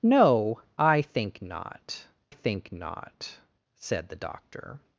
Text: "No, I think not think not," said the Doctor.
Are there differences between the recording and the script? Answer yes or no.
no